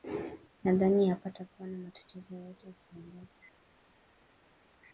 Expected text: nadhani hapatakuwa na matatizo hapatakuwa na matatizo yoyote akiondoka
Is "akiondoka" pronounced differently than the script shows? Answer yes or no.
no